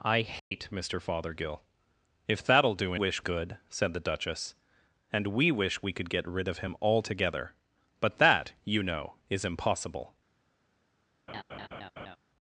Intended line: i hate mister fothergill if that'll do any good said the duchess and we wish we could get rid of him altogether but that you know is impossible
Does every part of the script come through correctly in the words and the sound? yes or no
no